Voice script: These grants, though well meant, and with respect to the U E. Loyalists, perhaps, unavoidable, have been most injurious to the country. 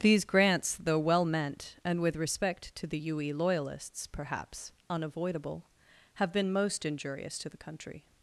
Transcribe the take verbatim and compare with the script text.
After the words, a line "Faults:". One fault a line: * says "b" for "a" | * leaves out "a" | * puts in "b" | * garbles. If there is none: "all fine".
These grants, though well meant, and with respect to the U E. Loyalists, perhaps, unavoidable, have been most injurious to the country.
Faults:
all fine